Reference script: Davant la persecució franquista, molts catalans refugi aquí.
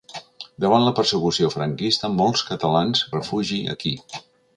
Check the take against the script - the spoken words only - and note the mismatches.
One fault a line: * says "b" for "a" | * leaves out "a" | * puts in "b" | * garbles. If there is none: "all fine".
all fine